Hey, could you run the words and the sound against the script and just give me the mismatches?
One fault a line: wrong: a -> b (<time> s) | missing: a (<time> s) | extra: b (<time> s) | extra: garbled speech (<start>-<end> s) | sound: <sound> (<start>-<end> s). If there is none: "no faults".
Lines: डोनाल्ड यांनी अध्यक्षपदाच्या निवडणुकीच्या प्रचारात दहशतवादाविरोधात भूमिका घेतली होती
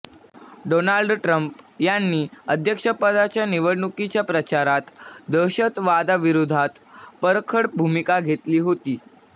extra: ट्रम्प (1.2 s)
extra: परखड (7.2 s)